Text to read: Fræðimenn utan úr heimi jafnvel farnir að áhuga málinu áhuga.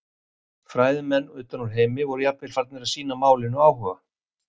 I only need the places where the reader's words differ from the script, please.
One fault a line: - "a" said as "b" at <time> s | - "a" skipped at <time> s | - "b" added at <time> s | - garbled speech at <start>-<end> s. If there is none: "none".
- "voru" added at 2.1 s
- "áhuga" said as "sýna" at 3.0 s